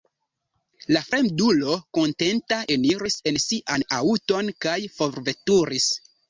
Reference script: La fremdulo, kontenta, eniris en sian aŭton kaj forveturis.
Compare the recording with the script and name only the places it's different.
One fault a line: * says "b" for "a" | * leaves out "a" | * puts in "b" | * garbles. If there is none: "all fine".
all fine